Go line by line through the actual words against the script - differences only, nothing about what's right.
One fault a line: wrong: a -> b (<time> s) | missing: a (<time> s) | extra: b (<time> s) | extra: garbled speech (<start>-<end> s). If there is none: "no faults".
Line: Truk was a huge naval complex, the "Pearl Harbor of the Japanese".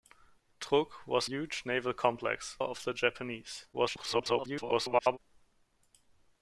missing: a (1.3 s)
missing: the Pearl Harbor (2.6 s)
extra: garbled speech (3.7-5.2 s)